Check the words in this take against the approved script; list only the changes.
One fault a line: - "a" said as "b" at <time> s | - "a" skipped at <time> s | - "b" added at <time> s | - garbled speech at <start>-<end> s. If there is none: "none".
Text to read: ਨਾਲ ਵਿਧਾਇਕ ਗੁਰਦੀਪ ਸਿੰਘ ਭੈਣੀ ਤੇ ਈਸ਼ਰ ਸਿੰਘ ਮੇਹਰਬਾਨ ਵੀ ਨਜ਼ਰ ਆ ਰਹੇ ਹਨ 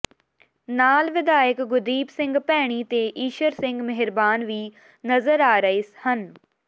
none